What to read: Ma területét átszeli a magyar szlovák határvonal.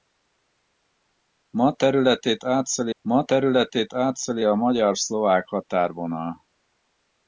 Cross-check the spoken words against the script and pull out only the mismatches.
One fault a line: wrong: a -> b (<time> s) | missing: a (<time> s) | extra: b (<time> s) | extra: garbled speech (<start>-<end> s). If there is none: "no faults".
extra: ma területét átszeli (3.0 s)